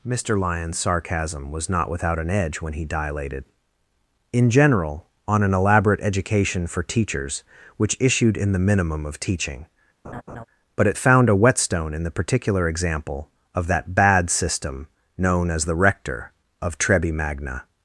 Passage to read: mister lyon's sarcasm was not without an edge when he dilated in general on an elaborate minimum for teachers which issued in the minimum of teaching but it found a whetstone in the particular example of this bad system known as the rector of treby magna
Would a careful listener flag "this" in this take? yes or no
yes